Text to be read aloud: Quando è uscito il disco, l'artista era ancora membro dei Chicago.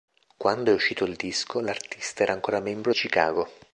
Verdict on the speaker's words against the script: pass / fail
fail